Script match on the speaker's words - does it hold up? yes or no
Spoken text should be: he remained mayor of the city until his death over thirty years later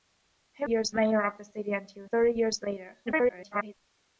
no